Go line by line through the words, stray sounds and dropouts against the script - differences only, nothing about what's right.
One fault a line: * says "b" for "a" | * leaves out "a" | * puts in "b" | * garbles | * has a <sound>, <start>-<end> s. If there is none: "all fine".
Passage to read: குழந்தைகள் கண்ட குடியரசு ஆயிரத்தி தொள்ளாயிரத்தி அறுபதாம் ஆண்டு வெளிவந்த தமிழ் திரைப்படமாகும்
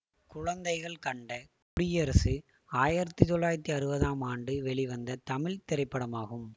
* has a dropout, 1.6-1.8 s